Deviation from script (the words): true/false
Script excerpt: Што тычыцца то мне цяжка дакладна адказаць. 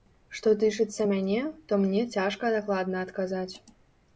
true